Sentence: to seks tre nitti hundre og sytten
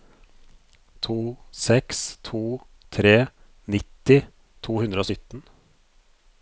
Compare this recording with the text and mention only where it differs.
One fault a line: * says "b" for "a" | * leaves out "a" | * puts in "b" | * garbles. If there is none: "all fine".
* puts in "to"
* puts in "to"